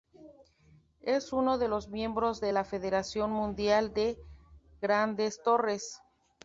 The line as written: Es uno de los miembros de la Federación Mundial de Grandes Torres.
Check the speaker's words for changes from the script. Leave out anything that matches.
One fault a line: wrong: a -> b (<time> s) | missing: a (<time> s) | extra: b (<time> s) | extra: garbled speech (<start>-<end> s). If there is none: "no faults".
no faults